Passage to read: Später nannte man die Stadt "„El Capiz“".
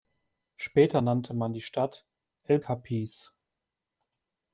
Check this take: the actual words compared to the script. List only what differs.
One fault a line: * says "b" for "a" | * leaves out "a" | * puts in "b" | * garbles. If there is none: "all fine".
all fine